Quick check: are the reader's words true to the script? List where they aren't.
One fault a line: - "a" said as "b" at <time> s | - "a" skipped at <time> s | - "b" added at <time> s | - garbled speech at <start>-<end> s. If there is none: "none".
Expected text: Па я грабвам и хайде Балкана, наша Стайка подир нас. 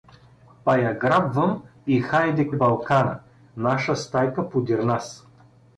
none